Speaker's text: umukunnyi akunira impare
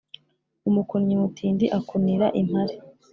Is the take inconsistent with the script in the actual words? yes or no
yes